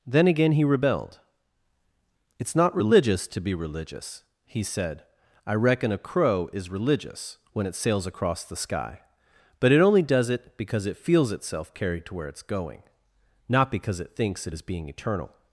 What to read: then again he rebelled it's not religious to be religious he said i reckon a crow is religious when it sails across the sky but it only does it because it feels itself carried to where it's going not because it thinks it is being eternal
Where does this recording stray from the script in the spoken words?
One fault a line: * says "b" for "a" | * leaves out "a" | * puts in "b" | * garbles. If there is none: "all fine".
all fine